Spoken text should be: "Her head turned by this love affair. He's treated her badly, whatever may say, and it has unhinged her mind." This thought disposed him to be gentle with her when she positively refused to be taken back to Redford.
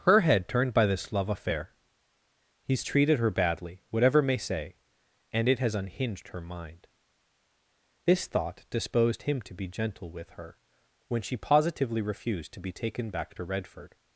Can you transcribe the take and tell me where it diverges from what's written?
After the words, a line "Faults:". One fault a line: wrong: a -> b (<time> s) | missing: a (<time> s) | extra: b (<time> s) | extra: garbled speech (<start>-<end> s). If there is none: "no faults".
"Her head turned by this love affair. He's treated her badly, whatever may say, and it has unhinged her mind." This thought disposed him to be gentle with her when she positively refused to be taken back to Redford.
Faults:
no faults